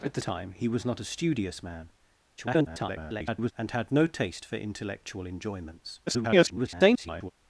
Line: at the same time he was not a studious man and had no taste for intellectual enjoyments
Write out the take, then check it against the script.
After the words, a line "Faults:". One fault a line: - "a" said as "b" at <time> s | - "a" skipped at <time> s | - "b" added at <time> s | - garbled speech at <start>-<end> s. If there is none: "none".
at the time he was not a studious man [garbled] and had no taste for intellectual enjoyments [garbled]
Faults:
- "same" skipped at 0.2 s
- garbled speech at 2.4-3.5 s
- garbled speech at 6.1-7.3 s